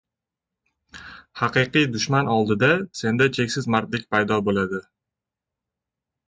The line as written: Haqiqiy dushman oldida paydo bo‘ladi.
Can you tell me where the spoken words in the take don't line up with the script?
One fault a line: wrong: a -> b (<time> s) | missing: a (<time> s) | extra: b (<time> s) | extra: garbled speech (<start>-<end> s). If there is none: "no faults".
extra: senda cheksiz mardlik (3.0 s)